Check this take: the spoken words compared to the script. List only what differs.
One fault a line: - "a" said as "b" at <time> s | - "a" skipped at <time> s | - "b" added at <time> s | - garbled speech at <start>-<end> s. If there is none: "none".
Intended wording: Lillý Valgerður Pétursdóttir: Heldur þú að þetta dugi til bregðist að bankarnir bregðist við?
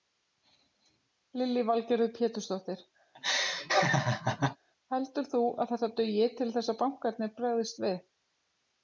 - "bregðist" said as "þess" at 6.6 s